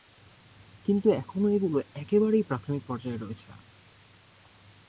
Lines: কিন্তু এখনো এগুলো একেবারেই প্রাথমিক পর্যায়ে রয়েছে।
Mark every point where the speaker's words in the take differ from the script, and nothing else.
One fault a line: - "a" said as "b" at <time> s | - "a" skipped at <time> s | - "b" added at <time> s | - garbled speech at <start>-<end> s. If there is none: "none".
none